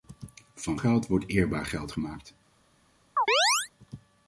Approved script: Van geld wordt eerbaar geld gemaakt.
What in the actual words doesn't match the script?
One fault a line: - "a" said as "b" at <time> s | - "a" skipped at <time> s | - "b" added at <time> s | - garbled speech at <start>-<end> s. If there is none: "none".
none